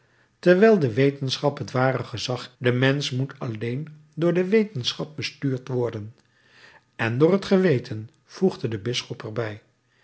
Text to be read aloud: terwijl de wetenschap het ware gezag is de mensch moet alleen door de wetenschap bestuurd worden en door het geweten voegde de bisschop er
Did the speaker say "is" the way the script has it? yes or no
no